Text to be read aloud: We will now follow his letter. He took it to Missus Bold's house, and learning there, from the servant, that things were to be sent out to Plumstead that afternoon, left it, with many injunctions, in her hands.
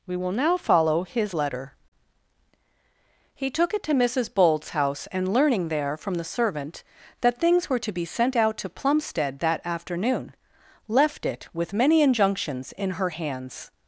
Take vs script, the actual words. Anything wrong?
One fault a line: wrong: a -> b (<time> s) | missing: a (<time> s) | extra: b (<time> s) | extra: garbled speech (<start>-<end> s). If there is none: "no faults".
no faults